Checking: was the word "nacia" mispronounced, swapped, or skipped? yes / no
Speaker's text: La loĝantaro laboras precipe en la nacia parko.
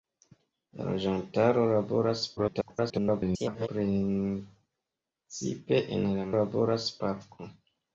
yes